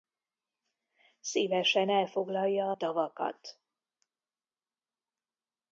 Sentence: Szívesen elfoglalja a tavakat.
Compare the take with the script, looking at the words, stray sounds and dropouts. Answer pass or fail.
pass